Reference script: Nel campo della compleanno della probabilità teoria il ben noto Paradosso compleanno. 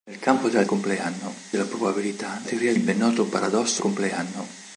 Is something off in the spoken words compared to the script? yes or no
no